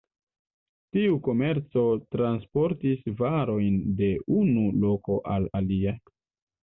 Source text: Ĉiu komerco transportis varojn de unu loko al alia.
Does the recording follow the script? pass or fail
fail